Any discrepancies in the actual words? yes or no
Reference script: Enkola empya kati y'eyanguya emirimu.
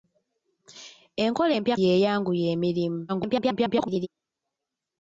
yes